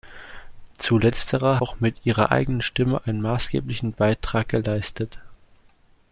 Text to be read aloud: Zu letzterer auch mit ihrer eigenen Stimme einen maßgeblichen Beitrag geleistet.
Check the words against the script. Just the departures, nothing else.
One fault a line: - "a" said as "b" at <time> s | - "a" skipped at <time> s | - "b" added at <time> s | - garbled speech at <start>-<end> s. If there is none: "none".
none